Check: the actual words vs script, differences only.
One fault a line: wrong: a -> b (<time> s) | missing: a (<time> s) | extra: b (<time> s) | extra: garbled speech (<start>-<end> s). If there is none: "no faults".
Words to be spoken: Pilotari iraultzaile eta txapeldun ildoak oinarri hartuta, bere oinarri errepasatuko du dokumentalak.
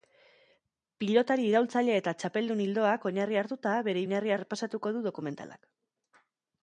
no faults